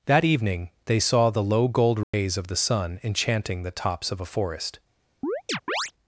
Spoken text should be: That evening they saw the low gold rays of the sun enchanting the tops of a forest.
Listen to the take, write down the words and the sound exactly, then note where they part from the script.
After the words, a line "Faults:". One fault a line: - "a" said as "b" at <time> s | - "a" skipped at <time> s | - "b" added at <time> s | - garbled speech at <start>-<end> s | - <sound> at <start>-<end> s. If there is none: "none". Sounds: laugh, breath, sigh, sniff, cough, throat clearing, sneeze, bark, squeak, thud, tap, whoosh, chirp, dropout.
That evening they saw the low gold rays of the sun enchanting the tops of a forest.
Faults:
- dropout at 2.0-2.1 s
- chirp at 5.2-5.9 s